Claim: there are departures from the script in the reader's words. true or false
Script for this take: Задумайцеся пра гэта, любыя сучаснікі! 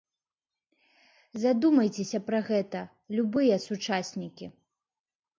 false